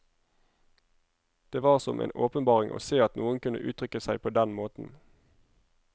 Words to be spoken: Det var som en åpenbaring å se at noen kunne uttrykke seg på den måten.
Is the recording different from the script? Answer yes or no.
no